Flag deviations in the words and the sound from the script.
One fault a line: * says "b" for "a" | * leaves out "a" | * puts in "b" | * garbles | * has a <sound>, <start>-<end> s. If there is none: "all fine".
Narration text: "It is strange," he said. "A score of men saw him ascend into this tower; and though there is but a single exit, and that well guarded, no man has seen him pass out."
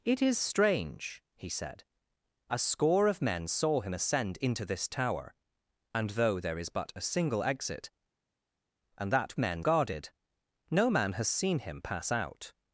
* says "men" for "well"